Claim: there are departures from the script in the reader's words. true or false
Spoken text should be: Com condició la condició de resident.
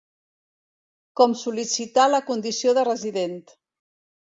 true